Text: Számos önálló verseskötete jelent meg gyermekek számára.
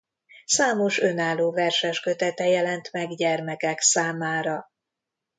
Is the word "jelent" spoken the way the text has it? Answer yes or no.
yes